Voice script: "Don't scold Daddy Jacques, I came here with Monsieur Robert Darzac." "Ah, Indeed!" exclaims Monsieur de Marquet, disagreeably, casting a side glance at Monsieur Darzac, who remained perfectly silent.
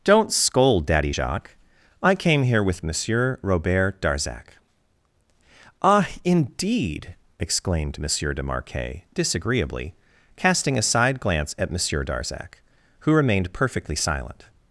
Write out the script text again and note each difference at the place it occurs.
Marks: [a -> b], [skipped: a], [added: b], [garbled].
"Don't scold Daddy Jacques, I came here with Monsieur Robert Darzac." "Ah, Indeed!" [exclaims -> exclaimed] Monsieur de Marquet, disagreeably, casting a side glance at Monsieur Darzac, who remained perfectly silent.